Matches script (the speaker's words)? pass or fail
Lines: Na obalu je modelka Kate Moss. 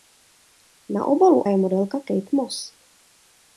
pass